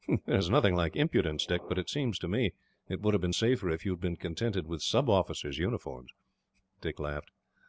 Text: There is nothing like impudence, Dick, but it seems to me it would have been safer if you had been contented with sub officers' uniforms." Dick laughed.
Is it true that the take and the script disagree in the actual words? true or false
false